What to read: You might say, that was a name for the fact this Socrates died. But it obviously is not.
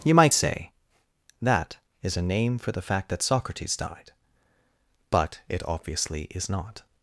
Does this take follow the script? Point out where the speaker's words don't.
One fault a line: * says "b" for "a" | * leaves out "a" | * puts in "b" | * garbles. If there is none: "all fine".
* says "is" for "was"
* says "that" for "this"